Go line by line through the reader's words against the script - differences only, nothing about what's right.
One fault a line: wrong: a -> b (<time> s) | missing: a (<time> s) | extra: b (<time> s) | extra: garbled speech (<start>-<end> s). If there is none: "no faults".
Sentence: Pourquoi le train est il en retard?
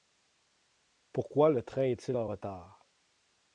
no faults